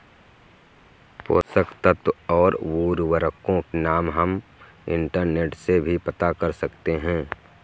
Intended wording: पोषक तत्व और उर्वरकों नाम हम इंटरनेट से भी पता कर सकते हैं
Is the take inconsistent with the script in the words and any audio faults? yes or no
no